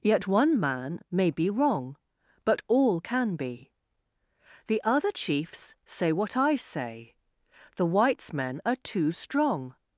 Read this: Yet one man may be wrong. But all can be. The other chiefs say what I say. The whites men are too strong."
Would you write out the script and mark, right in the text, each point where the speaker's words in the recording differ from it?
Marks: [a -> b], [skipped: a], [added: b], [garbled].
Yet one man may be wrong. But all can be. The other chiefs say what I say. The whites men are too strong."